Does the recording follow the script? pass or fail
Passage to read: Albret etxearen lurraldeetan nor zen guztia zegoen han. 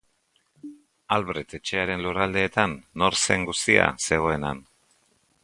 pass